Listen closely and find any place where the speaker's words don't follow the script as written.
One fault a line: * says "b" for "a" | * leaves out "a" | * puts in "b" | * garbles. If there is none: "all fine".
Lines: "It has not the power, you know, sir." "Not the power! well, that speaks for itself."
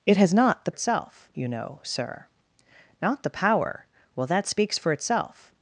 * says "itself" for "power"